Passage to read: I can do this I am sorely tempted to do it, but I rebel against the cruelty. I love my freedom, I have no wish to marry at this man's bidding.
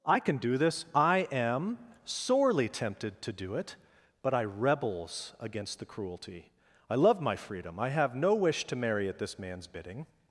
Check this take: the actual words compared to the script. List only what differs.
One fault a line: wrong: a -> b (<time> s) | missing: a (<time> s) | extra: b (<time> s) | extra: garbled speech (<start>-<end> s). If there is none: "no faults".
wrong: rebel -> rebels (4.4 s)